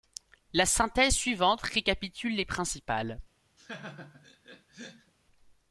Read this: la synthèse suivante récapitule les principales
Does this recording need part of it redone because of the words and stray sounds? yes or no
yes